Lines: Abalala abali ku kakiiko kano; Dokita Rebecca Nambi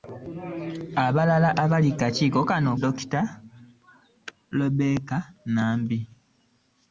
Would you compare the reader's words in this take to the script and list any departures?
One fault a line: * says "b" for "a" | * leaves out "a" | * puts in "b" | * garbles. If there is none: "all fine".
all fine